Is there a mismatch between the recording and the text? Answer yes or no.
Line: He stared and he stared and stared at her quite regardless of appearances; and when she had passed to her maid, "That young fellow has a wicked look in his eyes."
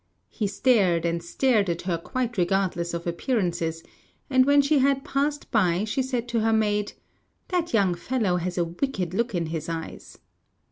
yes